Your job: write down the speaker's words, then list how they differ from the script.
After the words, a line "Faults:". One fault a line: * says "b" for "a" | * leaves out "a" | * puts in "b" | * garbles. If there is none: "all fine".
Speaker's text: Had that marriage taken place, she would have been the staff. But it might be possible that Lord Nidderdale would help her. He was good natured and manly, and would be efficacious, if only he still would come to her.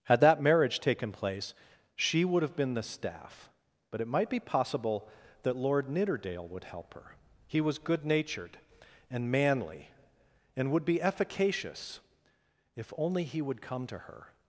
Had that marriage taken place, she would have been the staff. But it might be possible that Lord Nidderdale would help her. He was good natured and manly, and would be efficacious, if only he would come to her.
Faults:
* leaves out "still"